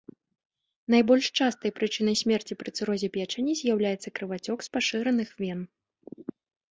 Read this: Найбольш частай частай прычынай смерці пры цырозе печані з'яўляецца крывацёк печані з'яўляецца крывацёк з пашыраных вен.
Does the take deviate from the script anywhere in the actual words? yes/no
yes